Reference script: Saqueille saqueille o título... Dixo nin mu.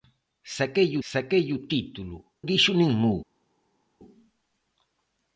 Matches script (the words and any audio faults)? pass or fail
pass